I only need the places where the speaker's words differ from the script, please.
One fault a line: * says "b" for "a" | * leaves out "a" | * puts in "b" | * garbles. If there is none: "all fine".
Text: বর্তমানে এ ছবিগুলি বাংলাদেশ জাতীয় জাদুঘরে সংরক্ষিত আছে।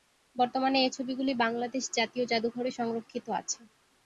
all fine